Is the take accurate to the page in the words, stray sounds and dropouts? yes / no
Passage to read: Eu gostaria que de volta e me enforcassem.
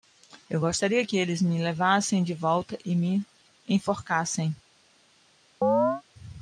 no